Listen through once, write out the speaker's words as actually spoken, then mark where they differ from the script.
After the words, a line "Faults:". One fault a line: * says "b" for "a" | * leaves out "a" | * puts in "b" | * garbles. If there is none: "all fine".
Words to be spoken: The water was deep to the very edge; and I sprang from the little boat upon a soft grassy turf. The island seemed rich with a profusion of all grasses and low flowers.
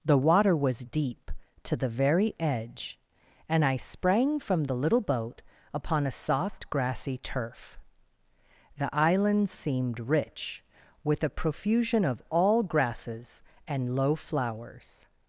The water was deep to the very edge; and I sprang from the little boat upon a soft grassy turf. The island seemed rich with a profusion of all grasses and low flowers.
Faults:
all fine